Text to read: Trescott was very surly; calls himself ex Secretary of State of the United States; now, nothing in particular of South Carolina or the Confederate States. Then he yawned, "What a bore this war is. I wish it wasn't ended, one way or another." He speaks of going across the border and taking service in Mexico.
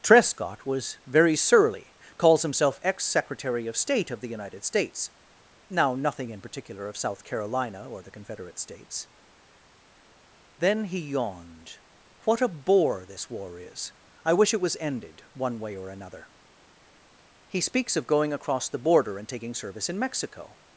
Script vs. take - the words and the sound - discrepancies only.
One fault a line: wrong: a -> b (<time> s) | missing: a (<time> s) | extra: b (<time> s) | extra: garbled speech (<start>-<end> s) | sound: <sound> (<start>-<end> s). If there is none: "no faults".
wrong: wasn't -> was (14.6 s)